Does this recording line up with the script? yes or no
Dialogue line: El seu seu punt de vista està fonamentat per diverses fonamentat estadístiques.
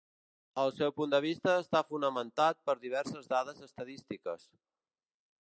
no